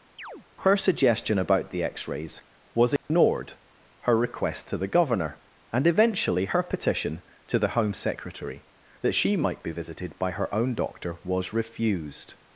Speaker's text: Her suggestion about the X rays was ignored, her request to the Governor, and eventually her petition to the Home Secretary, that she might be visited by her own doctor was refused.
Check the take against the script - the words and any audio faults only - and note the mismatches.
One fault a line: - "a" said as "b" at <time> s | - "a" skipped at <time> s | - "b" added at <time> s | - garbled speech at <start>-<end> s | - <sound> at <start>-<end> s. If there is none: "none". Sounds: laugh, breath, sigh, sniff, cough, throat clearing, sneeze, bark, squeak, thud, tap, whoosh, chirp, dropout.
- chirp at 0.2-0.5 s
- dropout at 3.0-3.1 s